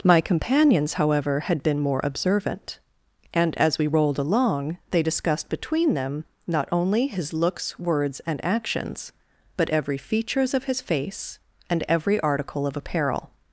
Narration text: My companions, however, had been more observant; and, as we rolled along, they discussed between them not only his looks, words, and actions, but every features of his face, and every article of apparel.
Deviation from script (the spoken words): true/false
false